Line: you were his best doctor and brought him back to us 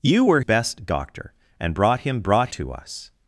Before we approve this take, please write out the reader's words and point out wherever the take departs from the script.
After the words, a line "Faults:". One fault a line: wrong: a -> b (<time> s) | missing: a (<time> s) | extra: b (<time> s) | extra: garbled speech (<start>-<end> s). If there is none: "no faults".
you were best doctor and brought him brought to us
Faults:
missing: his (0.4 s)
wrong: back -> brought (2.2 s)